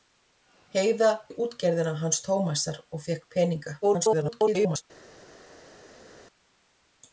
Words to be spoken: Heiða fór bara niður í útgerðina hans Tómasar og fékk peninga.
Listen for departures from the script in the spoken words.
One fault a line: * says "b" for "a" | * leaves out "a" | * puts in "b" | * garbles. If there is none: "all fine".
* leaves out "fór bara niður"
* garbles